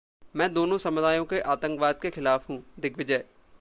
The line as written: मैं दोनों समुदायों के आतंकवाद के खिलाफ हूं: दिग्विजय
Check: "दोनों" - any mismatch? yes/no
no